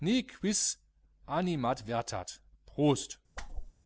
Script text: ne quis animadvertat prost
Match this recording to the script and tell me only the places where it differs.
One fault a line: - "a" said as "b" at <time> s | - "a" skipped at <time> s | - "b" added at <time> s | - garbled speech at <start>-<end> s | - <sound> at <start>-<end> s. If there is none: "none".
- whoosh at 3.4-3.7 s